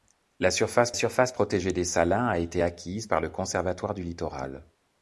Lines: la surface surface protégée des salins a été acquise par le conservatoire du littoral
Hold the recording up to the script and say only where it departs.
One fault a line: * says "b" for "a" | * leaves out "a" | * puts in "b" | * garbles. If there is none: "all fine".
all fine